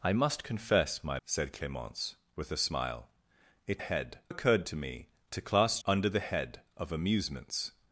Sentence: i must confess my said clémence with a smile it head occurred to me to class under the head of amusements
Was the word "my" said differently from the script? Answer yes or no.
no